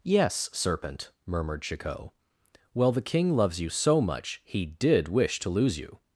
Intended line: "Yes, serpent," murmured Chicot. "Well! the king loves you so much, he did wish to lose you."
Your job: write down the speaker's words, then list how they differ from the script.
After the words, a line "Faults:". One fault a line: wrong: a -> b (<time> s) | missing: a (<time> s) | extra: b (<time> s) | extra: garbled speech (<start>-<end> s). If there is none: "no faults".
"Yes, serpent," murmured Chicot. "Well! the king loves you so much, he did wish to lose you."
Faults:
no faults